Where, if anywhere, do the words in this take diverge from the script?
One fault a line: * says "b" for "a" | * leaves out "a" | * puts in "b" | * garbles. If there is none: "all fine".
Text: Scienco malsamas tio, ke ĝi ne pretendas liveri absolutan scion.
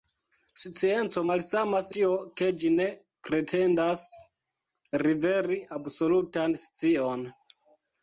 all fine